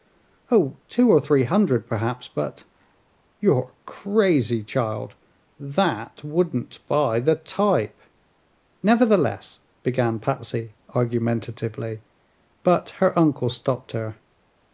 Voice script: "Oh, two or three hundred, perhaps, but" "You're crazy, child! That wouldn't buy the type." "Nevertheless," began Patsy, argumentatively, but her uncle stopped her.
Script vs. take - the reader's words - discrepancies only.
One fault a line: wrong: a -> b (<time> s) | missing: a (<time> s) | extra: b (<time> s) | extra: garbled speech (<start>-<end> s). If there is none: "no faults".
no faults